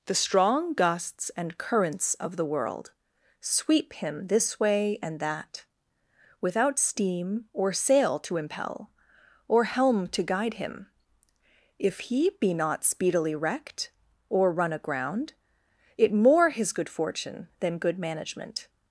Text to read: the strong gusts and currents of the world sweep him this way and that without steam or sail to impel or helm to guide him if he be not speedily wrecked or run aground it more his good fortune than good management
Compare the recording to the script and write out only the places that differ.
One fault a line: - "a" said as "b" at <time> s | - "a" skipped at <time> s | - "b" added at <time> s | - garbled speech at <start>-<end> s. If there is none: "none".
none